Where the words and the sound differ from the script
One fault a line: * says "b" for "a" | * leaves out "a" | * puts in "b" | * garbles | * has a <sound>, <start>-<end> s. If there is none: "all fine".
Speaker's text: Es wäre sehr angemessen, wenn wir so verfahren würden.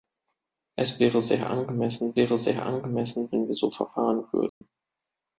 * puts in "wäre sehr angemessen"
* has a dropout, 4.5-4.6 s